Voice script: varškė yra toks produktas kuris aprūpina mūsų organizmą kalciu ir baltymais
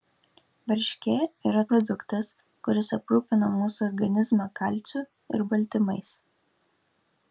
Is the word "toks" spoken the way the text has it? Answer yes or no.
no